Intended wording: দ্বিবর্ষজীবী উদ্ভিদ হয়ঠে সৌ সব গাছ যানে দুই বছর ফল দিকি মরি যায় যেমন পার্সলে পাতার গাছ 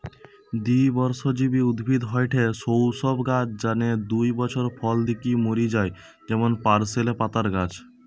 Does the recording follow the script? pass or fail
pass